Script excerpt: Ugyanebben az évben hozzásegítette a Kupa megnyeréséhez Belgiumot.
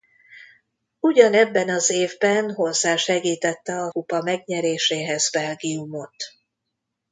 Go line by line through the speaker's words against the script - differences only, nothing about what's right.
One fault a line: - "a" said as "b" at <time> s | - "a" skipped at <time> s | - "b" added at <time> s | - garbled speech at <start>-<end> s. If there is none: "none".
none